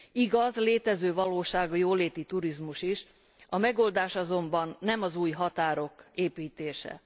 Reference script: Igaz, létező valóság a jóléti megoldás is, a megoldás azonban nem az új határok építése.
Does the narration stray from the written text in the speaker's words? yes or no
yes